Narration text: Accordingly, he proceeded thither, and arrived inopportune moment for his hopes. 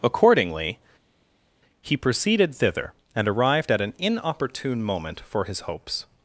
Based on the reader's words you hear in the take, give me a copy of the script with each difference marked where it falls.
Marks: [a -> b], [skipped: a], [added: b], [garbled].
Accordingly, he proceeded thither, and arrived [added: at an] inopportune moment for his hopes.